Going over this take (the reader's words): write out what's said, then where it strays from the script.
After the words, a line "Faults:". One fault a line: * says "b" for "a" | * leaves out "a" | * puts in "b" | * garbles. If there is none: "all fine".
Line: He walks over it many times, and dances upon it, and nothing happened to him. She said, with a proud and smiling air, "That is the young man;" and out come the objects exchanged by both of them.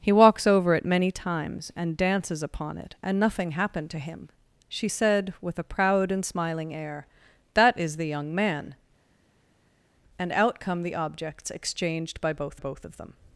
He walks over it many times, and dances upon it, and nothing happened to him. She said, with a proud and smiling air, "That is the young man;" and out come the objects exchanged by both both of them.
Faults:
* puts in "both"